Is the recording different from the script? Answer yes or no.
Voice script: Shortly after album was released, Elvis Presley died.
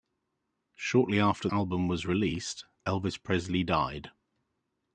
no